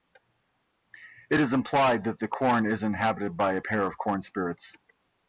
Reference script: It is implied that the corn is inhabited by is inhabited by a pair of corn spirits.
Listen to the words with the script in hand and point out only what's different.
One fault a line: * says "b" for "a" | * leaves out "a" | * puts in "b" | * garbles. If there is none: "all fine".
* leaves out "is inhabited by"